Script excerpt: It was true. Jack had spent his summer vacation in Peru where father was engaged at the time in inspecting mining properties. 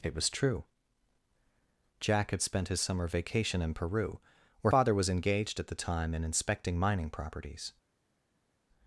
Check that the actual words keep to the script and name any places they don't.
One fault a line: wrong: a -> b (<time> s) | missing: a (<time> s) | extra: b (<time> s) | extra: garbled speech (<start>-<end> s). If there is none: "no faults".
no faults